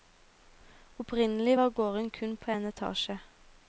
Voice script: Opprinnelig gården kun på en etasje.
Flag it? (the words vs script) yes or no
yes